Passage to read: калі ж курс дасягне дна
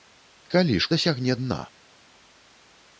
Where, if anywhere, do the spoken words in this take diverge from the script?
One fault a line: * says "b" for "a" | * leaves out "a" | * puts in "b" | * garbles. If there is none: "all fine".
* leaves out "курс"